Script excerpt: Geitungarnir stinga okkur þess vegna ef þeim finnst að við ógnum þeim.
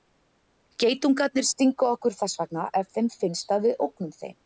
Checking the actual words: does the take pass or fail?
pass